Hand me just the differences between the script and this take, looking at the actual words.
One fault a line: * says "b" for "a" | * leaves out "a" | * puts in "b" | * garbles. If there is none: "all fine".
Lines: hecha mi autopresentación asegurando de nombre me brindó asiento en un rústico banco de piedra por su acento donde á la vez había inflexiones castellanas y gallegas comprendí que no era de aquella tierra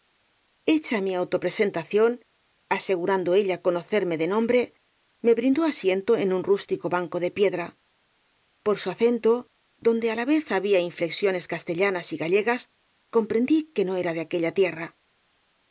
* puts in "ella conocerme"